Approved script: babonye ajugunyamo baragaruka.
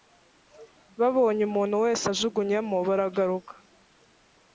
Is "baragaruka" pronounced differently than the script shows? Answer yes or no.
no